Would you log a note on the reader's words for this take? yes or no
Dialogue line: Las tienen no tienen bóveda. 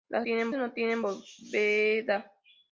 no